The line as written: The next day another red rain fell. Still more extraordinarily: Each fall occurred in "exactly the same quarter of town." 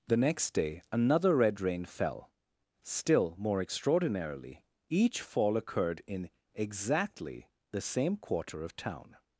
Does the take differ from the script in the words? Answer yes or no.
no